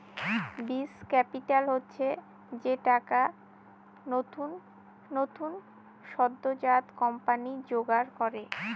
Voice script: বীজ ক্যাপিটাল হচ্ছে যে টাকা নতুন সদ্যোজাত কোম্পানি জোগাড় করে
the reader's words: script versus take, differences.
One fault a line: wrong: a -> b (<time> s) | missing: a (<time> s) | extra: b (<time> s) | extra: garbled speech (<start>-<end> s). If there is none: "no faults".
extra: নতুন (5.1 s)